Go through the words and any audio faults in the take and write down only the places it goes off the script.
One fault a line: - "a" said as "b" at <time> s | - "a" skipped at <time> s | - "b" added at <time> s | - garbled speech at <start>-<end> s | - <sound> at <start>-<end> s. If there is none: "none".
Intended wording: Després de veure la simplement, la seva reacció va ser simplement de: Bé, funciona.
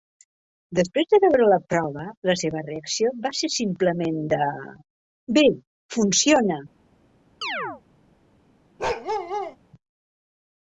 - "simplement" said as "prova" at 1.7 s
- chirp at 7.4-7.8 s
- bark at 8.8-9.6 s